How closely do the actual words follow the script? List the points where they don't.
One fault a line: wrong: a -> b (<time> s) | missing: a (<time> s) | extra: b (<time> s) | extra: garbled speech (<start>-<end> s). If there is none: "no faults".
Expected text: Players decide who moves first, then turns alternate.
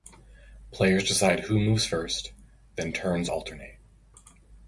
no faults